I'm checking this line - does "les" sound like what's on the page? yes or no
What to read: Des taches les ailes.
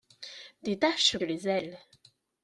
yes